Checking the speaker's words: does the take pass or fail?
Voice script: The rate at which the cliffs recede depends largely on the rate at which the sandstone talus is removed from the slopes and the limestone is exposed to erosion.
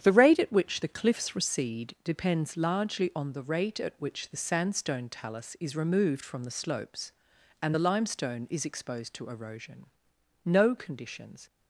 fail